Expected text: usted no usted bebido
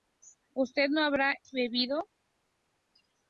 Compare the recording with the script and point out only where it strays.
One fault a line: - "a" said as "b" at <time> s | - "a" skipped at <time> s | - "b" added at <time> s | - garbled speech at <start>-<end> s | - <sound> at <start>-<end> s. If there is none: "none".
- "usted" said as "habrá" at 1.0 s